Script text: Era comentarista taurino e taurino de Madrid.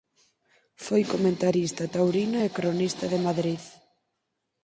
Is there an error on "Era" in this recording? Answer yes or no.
yes